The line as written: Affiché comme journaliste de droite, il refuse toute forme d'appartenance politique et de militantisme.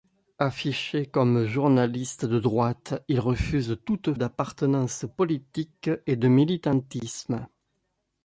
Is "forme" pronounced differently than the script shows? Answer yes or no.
yes